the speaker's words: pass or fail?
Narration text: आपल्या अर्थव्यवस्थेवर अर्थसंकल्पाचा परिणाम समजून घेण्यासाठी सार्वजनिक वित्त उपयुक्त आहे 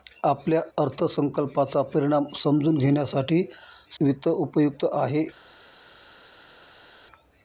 fail